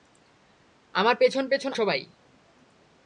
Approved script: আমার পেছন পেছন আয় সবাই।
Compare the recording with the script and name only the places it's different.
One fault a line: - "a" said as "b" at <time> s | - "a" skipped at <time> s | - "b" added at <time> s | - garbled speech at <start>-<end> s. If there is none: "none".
- "আয়" skipped at 1.7 s